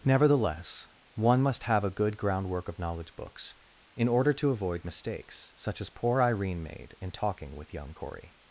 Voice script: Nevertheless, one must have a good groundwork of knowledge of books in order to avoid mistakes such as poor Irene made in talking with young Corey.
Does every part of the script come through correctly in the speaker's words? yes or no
no